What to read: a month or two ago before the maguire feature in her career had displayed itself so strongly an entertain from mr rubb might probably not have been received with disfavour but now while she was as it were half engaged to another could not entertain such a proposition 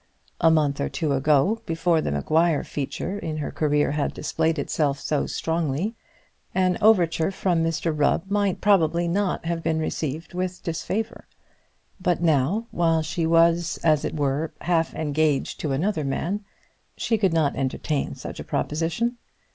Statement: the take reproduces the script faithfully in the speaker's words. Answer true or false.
false